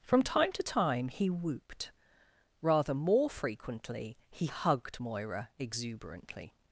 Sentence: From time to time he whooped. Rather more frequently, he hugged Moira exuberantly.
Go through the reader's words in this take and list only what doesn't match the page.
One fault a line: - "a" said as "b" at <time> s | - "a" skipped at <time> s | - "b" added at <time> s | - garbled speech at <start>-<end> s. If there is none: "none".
none